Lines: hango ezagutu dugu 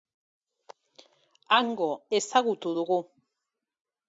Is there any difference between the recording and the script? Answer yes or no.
no